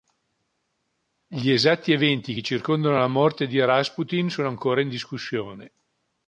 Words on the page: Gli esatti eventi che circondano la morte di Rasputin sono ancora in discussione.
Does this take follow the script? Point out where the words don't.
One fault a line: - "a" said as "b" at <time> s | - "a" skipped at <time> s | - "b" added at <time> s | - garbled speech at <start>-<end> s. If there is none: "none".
none